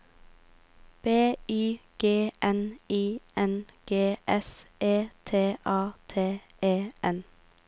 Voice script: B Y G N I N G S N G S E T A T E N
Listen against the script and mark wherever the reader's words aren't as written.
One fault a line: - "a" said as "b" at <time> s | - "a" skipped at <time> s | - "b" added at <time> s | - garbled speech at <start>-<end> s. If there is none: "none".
- "N G S" skipped at 4.7 s